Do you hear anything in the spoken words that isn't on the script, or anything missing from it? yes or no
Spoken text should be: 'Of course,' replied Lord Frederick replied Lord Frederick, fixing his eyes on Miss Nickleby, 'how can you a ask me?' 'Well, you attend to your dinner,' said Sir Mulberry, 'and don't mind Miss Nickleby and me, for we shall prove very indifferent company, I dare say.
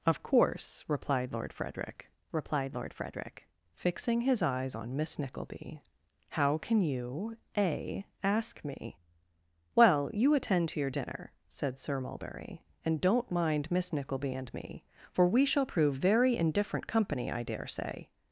no